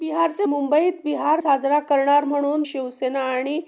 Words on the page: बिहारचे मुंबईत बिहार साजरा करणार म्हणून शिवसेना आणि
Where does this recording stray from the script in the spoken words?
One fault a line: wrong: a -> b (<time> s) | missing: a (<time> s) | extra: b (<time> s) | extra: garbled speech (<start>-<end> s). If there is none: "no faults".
no faults